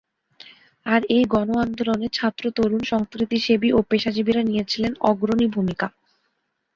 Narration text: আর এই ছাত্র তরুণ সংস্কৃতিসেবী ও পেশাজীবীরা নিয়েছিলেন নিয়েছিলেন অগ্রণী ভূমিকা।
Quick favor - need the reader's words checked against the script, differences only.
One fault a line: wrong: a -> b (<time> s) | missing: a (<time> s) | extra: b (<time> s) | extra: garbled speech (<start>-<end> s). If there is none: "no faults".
extra: গণ আন্দোলনে (1.2 s)
missing: নিয়েছিলেন (4.9 s)